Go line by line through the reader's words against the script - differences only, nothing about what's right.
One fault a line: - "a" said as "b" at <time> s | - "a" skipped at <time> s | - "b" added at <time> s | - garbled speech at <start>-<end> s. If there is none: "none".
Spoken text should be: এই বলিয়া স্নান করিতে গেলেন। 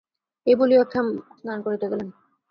none